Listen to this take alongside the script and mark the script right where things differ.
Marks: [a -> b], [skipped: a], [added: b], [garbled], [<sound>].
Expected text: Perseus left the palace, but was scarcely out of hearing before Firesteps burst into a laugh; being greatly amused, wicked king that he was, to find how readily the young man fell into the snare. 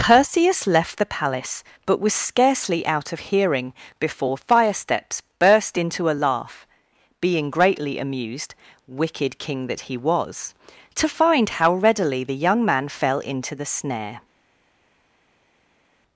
Perseus left the palace, but was scarcely out of hearing before Firesteps burst into a laugh; being greatly amused, wicked king that he was, to find how readily the young man fell into the snare.